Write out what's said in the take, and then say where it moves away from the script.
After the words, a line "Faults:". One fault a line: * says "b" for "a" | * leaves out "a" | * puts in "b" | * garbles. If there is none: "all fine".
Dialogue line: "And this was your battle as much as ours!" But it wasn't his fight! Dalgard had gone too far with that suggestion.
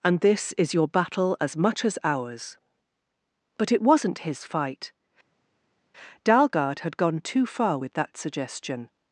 "And this is your battle as much as ours!" But it wasn't his fight! Dalgard had gone too far with that suggestion.
Faults:
* says "is" for "was"